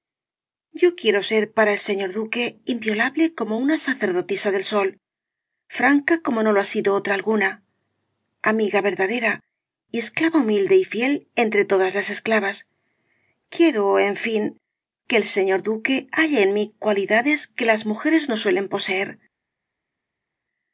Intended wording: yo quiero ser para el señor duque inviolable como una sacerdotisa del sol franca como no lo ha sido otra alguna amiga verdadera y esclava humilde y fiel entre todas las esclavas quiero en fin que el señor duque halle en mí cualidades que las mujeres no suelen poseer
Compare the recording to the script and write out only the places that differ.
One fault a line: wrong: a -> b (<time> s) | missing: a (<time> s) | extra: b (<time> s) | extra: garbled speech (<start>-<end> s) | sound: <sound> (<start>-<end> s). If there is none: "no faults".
no faults